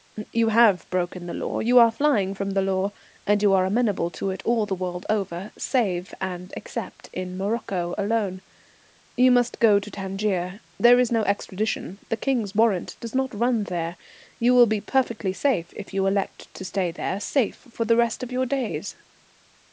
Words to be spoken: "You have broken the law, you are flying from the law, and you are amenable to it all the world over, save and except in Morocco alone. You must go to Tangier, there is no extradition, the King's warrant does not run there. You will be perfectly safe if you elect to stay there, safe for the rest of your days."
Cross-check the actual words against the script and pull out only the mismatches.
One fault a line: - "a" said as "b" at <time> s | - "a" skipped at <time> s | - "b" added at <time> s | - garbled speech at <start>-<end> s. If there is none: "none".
none